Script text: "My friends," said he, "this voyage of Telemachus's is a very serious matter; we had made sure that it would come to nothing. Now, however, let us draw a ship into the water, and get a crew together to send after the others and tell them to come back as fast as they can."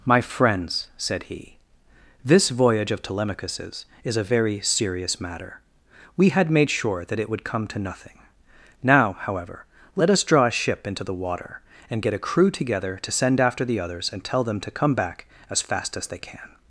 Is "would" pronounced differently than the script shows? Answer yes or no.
no